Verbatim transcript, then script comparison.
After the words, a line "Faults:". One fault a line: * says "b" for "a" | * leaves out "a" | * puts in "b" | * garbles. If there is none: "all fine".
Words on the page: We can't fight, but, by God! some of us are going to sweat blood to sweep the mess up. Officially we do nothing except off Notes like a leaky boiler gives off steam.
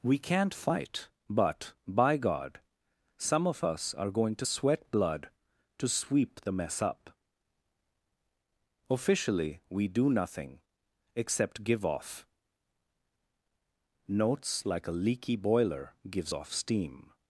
We can't fight, but, by God! some of us are going to sweat blood to sweep the mess up. Officially we do nothing except give off Notes like a leaky boiler gives off steam.
Faults:
* puts in "give"